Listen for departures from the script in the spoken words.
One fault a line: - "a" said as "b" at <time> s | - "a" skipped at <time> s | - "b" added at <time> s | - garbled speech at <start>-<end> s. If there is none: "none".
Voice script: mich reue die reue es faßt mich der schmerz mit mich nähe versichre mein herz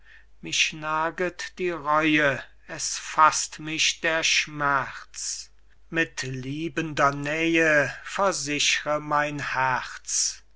- "reue" said as "naget" at 0.7 s
- "mich" said as "liebender" at 6.2 s